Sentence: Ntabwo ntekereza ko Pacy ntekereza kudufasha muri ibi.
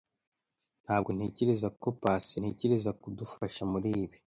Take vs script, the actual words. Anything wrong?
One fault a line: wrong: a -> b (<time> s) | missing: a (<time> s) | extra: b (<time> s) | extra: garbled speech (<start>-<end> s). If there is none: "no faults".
no faults